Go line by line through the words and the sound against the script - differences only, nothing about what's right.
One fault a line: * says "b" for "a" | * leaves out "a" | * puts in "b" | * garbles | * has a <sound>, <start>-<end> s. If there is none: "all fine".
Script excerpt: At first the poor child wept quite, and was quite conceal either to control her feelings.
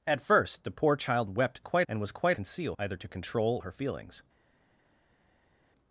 all fine